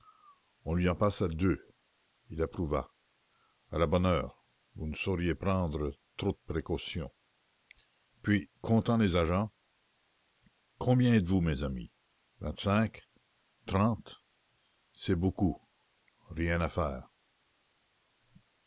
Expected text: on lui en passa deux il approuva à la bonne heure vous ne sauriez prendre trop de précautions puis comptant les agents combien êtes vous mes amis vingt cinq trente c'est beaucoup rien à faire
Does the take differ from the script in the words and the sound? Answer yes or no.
no